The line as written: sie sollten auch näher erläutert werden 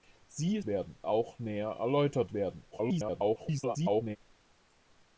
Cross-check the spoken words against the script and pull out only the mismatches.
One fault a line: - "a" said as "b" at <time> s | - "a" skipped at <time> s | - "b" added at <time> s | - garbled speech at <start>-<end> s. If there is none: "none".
- "sollten" said as "werden" at 0.6 s
- garbled speech at 2.7-4.2 s